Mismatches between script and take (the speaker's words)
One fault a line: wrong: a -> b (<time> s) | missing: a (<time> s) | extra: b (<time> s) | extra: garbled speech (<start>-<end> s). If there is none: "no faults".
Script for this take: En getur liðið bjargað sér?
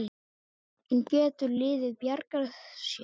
no faults